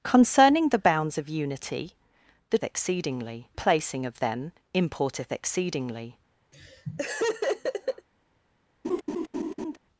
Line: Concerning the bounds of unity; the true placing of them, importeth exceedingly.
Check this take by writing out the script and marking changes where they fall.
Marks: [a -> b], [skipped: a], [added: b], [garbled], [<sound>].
Concerning the bounds of unity; the [true -> exceedingly] placing of them, importeth exceedingly. [laugh] [laugh]